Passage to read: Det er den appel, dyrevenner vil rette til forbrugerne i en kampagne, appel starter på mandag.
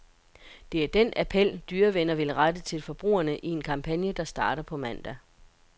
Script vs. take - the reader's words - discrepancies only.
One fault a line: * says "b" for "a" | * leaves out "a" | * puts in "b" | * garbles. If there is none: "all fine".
* says "der" for "appel"